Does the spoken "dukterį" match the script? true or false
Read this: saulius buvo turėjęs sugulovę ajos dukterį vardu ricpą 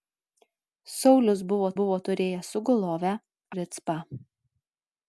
false